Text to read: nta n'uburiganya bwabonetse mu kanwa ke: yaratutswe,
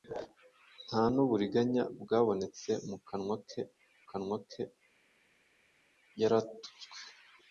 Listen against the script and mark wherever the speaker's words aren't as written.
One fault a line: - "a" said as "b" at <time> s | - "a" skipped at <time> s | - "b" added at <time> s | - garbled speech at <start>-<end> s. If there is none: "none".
- "kanwa ke" added at 4.1 s